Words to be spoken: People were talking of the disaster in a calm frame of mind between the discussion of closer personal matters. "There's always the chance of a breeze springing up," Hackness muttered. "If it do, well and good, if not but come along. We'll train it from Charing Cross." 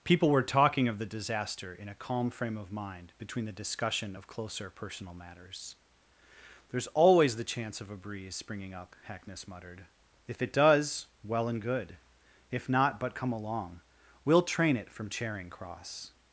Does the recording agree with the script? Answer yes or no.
no